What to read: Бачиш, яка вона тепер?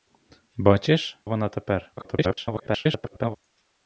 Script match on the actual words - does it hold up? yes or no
no